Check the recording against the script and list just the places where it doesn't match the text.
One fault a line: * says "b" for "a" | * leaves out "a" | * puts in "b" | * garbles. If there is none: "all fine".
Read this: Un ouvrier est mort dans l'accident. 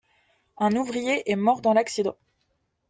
all fine